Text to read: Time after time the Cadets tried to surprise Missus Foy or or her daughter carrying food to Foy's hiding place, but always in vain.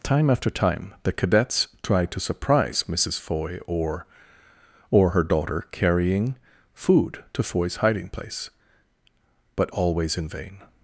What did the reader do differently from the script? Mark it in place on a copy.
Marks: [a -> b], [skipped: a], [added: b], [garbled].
Time after time the Cadets tried to surprise Missus Foy or or her daughter carrying food to Foy's hiding place, but always in vain.